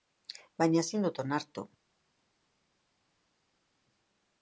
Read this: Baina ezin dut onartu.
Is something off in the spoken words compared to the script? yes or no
no